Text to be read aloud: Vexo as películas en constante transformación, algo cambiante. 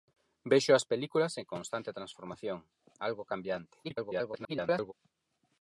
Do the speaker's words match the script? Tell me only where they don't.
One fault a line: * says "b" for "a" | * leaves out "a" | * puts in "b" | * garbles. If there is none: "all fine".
* garbles